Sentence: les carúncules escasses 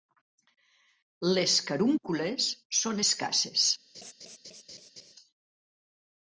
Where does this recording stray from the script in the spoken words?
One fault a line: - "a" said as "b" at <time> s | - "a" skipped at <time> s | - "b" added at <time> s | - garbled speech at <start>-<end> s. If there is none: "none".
- "són" added at 2.8 s